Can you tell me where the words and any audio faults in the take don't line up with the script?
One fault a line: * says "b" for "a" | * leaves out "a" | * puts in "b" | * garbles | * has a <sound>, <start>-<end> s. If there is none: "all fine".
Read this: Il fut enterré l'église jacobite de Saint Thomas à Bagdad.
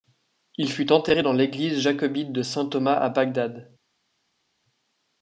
* puts in "dans"